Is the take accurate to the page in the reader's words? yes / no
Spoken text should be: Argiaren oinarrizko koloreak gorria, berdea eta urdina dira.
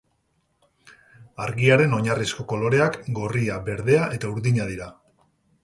yes